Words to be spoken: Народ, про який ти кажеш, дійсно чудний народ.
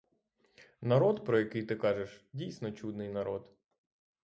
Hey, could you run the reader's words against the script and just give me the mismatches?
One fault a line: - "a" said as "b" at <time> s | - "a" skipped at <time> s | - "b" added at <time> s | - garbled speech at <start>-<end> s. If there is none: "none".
none